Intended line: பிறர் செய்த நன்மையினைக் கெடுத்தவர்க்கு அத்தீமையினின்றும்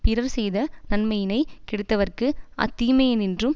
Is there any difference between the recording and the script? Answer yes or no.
no